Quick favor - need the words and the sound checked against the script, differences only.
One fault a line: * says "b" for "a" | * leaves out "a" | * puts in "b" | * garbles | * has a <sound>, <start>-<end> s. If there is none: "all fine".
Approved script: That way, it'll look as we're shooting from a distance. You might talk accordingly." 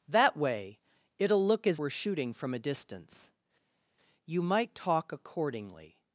all fine